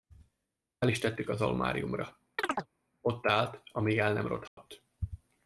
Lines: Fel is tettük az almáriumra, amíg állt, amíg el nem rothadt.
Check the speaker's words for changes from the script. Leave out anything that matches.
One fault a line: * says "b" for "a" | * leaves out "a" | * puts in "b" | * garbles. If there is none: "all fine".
* says "ott" for "amíg"